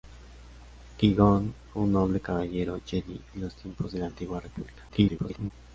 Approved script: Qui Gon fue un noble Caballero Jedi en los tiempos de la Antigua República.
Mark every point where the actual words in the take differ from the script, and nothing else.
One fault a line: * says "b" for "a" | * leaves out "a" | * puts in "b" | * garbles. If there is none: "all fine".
* garbles